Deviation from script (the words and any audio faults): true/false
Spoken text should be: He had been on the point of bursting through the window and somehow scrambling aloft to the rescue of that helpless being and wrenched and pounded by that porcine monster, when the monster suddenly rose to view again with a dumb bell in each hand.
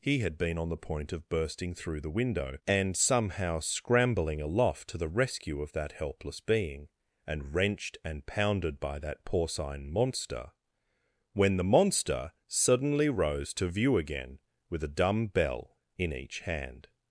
false